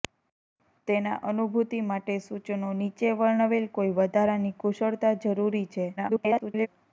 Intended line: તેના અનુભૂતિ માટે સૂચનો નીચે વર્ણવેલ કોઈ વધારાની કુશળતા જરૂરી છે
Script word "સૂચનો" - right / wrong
right